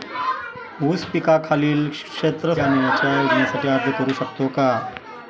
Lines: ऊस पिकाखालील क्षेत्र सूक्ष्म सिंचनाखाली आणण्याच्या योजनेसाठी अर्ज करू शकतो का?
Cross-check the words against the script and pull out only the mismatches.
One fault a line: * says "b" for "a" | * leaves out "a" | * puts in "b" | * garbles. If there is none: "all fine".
* leaves out "सूक्ष्म सिंचनाखाली"